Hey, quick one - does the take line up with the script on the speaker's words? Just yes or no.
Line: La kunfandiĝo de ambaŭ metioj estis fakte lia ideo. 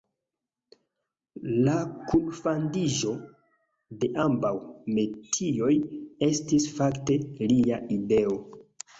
yes